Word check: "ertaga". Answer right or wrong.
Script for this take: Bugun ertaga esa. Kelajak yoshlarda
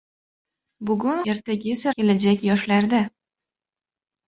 right